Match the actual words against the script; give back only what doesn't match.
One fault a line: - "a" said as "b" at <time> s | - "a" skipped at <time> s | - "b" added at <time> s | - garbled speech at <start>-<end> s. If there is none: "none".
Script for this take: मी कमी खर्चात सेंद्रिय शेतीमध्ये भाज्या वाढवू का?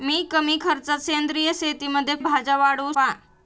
none